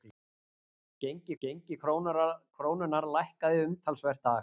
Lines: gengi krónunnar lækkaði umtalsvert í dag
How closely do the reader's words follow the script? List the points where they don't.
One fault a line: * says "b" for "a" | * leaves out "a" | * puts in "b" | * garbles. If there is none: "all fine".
* puts in "gengi"
* leaves out "í"